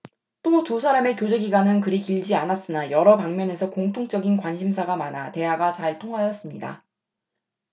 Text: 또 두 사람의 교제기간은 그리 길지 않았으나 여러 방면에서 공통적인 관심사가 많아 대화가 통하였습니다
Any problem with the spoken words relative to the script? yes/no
yes